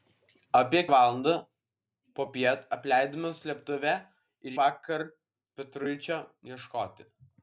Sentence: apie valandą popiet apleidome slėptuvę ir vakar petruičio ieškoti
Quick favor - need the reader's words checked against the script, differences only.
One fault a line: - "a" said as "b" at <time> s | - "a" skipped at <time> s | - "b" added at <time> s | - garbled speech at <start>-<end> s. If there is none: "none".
none